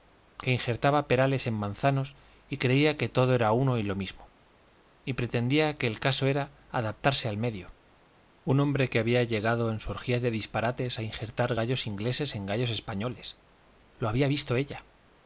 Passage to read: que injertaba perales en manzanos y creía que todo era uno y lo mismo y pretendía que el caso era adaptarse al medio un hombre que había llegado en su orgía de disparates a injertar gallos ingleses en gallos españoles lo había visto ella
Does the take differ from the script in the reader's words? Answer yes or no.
no